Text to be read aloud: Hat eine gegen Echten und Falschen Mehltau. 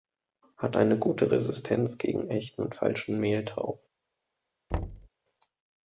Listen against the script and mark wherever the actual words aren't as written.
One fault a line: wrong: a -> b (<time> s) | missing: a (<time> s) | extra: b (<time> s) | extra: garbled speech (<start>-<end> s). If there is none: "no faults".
extra: gute Resistenz (1.0 s)